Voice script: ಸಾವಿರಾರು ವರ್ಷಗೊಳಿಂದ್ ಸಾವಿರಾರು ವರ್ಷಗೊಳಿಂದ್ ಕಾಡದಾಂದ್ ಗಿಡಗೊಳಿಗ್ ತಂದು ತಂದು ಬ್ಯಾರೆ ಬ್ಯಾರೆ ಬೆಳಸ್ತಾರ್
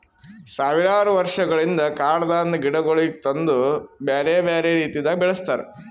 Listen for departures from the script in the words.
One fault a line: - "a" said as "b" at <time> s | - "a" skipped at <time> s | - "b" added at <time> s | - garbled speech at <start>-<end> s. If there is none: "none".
- "ಸಾವಿರಾರು ವರ್ಷಗೊಳಿಂದ್" skipped at 1.8 s
- "ತಂದು" said as "ಬ್ಯಾರೆ" at 4.0 s
- "ಬ್ಯಾರೆ" said as "ರೀತಿದಾಗ್" at 4.8 s